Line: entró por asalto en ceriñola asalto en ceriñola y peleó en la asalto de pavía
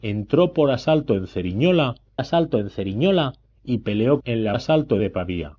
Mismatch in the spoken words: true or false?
false